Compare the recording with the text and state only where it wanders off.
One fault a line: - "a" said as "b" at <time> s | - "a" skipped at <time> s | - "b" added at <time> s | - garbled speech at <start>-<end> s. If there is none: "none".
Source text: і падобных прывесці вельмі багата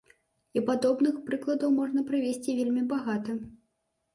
- "прыкладаў можна" added at 1.3 s